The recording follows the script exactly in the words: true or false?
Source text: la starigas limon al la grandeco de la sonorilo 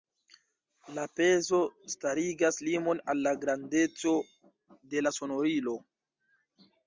false